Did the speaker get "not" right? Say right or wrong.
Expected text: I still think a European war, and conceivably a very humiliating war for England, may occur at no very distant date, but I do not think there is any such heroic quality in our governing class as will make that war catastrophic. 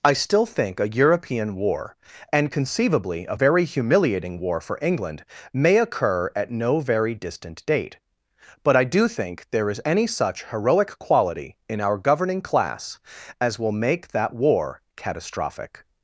wrong